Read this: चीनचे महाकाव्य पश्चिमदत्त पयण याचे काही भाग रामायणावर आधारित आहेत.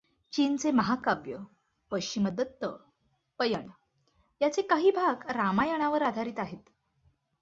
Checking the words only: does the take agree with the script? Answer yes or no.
yes